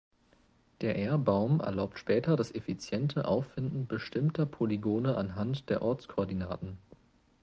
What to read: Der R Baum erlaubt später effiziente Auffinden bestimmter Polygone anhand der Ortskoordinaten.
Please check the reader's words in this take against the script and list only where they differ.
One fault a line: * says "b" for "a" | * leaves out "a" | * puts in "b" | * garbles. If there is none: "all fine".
* puts in "das"